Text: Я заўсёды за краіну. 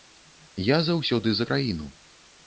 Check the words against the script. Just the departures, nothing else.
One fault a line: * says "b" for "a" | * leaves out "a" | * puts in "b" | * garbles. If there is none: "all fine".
all fine